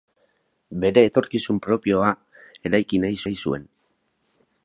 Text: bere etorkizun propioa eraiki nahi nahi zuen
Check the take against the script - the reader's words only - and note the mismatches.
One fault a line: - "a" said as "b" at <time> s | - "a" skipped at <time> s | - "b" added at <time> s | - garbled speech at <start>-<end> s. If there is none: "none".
none